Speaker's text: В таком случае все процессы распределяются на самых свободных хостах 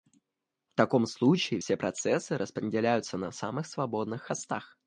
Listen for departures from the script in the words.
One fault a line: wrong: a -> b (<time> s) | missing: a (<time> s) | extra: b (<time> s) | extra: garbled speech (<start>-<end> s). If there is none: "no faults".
no faults